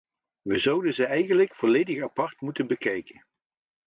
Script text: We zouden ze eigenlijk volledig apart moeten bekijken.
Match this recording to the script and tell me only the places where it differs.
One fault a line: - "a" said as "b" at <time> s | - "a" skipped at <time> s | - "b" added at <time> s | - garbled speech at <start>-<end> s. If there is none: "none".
none